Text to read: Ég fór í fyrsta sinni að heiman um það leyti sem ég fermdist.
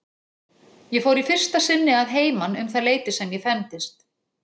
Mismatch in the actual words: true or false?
false